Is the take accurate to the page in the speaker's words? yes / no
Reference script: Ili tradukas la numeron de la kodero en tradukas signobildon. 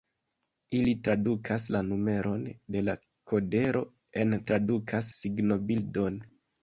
yes